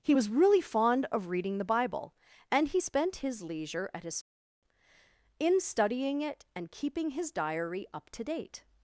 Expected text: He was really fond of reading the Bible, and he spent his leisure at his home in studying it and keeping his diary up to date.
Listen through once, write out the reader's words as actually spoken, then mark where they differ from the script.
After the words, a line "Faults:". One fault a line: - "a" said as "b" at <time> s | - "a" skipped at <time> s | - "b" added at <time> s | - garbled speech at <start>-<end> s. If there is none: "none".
He was really fond of reading the Bible, and he spent his leisure at his in studying it and keeping his diary up to date.
Faults:
- "home" skipped at 4.2 s